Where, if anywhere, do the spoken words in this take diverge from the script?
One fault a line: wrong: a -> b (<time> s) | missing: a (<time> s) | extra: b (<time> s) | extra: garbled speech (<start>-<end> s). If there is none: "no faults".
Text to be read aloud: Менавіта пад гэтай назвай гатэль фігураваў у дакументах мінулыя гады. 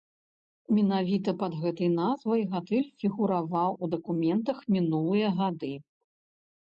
no faults